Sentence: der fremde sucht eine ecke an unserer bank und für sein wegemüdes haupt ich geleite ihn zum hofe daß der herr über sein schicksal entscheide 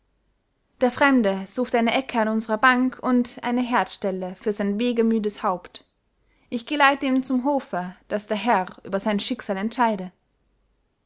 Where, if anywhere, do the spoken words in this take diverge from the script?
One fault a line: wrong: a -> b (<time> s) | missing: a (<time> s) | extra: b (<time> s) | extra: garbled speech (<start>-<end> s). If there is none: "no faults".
extra: eine herdstelle (3.4 s)